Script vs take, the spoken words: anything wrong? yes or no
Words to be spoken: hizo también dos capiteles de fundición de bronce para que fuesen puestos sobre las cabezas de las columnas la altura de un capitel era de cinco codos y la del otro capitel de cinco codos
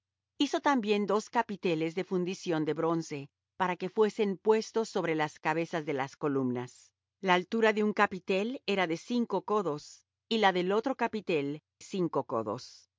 yes